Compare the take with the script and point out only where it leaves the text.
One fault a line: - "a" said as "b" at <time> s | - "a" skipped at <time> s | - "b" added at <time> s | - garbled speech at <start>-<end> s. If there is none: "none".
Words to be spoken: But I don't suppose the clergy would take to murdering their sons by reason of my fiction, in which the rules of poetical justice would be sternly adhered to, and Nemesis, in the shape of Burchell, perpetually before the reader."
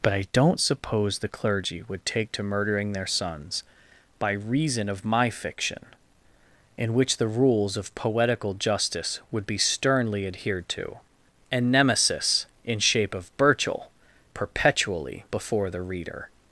- "the" skipped at 12.8 s